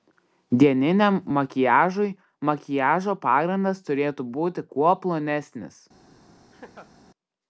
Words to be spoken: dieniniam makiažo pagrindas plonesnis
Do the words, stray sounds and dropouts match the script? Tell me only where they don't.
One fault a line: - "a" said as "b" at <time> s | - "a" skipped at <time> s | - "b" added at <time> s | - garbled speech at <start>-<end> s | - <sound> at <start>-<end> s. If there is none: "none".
- "makiažui" added at 1.4 s
- "turėtų būti kuo" added at 3.9 s
- laugh at 6.5-6.9 s